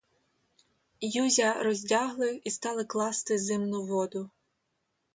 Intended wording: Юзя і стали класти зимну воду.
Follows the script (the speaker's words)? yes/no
no